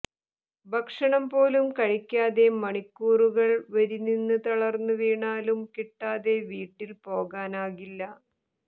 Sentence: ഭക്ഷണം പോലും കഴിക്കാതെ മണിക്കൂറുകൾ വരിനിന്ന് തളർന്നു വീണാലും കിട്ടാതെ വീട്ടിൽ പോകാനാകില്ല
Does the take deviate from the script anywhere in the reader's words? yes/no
no